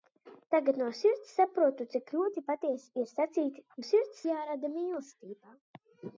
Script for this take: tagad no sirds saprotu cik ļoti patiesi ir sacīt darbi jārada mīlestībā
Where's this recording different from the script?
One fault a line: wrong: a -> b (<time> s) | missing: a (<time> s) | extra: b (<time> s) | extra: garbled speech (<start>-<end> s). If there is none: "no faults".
wrong: darbi -> sirds (3.9 s)